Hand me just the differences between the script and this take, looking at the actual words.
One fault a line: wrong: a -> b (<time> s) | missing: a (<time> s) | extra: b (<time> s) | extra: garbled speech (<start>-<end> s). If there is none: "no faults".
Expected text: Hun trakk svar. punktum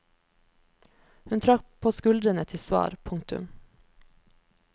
extra: på skuldrene til (1.8 s)